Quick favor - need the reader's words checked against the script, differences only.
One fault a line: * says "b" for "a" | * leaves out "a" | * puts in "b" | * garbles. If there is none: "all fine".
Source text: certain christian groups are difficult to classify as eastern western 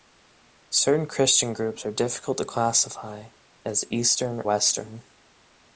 all fine